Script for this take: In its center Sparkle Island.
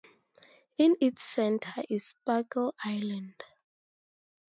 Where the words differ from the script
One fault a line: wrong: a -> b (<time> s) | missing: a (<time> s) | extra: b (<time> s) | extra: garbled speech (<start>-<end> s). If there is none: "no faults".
extra: is (1.9 s)